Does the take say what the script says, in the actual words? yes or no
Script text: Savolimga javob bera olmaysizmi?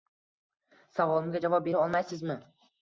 yes